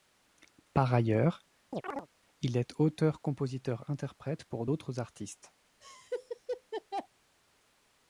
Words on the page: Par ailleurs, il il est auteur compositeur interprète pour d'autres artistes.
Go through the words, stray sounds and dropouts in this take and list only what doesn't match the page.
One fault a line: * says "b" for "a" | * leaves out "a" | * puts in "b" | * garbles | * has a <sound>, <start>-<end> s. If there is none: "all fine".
* has a chirp, 1.7-2.1 s
* leaves out "il"
* has a laugh, 5.8-7.1 s